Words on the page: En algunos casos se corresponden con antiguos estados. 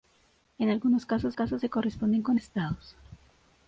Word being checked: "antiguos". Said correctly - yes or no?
no